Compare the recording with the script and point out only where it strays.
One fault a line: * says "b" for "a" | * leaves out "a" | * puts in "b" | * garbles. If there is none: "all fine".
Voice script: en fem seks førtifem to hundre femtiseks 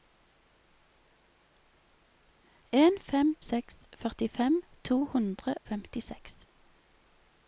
all fine